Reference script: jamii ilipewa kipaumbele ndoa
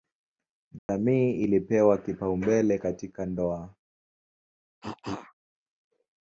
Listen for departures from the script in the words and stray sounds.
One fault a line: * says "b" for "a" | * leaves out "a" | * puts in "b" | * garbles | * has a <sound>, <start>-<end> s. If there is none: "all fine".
* has a dropout, 0.8-0.9 s
* puts in "katika"
* has a cough, 4.8-5.3 s